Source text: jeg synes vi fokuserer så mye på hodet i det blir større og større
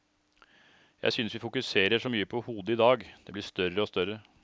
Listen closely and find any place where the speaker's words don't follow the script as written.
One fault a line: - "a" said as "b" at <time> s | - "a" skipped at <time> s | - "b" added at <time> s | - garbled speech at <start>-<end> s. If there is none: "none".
- "dag" added at 2.8 s